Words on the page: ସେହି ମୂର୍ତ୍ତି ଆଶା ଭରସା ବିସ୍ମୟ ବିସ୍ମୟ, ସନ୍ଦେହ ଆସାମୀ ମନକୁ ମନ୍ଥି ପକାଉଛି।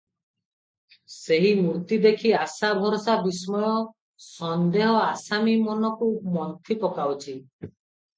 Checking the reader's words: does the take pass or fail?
fail